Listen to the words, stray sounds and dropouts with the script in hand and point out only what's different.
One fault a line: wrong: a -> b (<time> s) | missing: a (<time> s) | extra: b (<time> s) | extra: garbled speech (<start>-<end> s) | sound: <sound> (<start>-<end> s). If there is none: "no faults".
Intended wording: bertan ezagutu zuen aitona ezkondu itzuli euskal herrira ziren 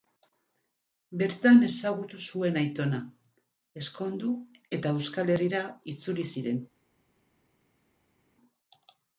wrong: itzuli -> eta (4.8 s)
extra: itzuli (5.9 s)